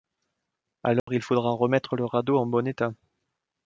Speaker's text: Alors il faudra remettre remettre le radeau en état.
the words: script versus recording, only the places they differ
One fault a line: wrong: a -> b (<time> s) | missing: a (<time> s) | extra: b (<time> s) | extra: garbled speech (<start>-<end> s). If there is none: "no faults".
missing: remettre (1.9 s)
extra: bon (2.5 s)